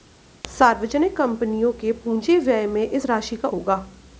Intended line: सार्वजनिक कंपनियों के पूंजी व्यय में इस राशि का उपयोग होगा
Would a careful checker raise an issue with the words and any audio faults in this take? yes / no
yes